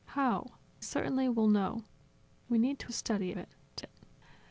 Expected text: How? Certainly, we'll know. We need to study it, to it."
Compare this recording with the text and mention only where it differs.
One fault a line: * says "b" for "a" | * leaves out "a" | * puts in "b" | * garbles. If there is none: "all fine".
all fine